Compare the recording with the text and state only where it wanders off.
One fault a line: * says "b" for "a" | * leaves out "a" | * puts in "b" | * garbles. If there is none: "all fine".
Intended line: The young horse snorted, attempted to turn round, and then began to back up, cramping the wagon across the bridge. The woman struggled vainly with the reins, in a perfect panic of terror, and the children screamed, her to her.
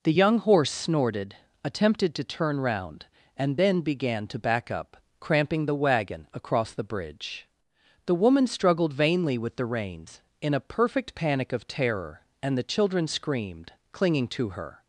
* says "clinging" for "her"